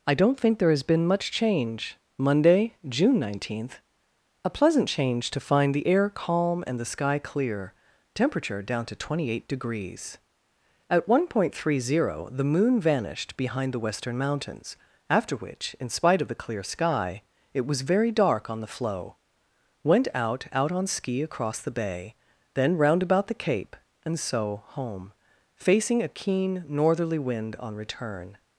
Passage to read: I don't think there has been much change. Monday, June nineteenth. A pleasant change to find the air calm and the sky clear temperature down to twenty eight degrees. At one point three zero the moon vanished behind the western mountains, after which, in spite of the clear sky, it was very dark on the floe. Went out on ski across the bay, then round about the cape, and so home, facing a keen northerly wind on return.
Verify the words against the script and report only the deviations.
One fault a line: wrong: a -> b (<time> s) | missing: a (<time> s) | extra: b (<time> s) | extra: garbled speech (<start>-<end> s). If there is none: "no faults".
extra: out (20.5 s)